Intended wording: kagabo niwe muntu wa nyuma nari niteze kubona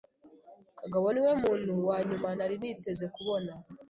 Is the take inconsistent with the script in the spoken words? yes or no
no